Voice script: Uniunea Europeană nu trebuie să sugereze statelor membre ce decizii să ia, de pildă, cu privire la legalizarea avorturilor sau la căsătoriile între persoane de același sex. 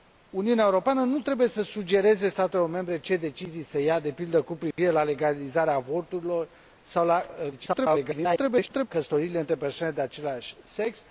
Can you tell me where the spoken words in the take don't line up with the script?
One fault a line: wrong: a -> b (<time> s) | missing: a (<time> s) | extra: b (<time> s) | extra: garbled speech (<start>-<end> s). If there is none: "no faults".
extra: garbled speech (7.5-8.9 s)